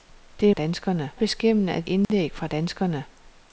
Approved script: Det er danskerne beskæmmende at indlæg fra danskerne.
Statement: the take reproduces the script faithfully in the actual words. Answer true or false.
true